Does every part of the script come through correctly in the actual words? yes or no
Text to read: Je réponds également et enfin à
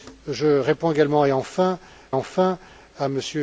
no